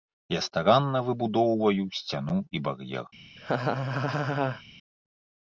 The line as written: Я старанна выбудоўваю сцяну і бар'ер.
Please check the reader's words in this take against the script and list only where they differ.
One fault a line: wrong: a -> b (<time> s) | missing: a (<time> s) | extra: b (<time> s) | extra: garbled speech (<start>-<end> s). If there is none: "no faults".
no faults